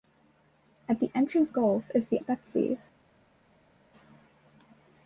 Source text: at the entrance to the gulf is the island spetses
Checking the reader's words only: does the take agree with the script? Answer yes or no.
no